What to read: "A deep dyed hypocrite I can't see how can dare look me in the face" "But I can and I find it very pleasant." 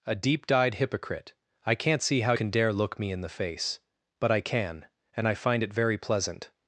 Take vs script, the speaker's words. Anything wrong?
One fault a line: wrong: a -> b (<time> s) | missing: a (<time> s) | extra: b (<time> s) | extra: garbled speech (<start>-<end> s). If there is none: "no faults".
no faults